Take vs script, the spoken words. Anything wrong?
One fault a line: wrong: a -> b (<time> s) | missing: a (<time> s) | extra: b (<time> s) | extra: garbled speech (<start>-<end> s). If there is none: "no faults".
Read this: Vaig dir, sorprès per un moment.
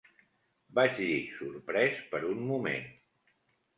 no faults